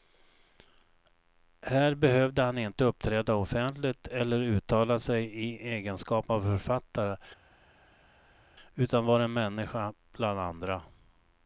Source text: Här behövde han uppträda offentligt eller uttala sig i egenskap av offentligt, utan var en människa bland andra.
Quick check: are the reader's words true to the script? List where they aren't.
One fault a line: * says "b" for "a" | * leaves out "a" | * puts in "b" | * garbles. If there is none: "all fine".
* puts in "inte"
* says "författare" for "offentligt"